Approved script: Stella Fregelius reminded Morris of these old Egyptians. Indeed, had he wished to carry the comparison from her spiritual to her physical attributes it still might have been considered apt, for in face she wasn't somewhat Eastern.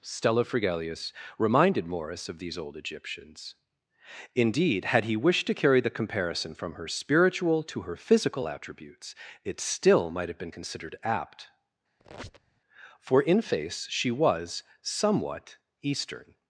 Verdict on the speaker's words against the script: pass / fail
fail